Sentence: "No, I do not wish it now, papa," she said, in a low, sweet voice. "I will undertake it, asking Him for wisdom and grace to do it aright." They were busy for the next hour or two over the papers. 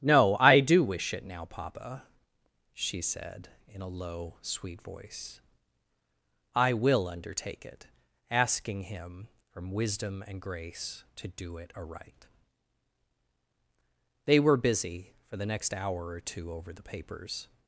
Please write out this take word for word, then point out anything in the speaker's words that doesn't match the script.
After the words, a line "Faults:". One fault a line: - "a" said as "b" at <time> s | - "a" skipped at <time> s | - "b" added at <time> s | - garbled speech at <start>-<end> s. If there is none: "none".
"No, I do wish it now, papa," she said, in a low, sweet voice. "I will undertake it, asking Him from wisdom and grace to do it aright." They were busy for the next hour or two over the papers.
Faults:
- "not" skipped at 0.8 s
- "for" said as "from" at 9.5 s